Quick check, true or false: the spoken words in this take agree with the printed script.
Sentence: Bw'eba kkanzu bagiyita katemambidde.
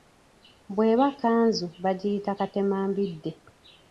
true